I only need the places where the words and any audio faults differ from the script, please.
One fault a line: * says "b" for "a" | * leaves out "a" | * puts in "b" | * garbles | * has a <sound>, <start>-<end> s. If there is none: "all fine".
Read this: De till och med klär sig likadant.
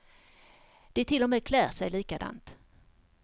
all fine